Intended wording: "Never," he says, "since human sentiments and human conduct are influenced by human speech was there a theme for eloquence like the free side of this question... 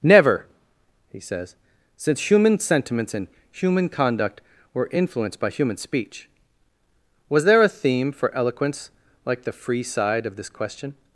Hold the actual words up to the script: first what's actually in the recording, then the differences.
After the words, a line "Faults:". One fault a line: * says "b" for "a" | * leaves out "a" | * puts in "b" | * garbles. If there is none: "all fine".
"Never," he says, "since human sentiments and human conduct were influenced by human speech was there a theme for eloquence like the free side of this question...
Faults:
* says "were" for "are"